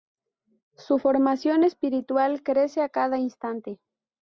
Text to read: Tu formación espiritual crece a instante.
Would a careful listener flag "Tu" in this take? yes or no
yes